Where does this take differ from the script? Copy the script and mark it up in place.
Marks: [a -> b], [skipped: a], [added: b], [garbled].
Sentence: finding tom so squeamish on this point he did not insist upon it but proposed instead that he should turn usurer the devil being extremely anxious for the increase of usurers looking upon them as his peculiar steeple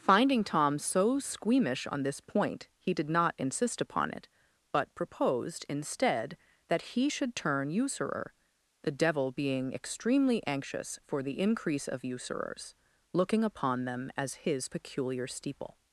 finding tom so squeamish on this point he did not insist upon it but proposed instead that he should turn usurer the devil being extremely anxious for the increase of usurers looking upon them as his peculiar steeple